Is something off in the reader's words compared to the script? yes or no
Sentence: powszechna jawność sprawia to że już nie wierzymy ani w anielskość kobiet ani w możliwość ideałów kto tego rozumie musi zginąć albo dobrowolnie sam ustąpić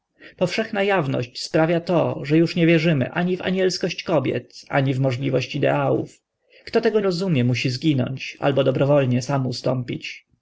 no